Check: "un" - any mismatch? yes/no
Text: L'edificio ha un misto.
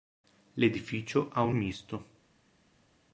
no